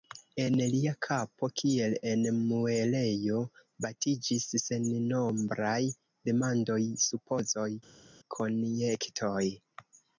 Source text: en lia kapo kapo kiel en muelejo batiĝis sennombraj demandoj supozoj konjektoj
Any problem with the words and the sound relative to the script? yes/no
yes